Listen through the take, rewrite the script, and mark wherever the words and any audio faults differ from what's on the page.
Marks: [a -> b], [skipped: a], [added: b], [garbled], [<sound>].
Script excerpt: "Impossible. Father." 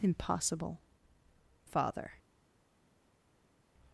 "Impossible. Father."